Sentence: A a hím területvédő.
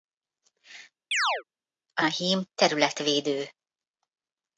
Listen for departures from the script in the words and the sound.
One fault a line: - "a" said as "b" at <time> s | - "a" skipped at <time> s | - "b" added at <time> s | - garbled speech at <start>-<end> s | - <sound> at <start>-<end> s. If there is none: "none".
- chirp at 1.1-1.4 s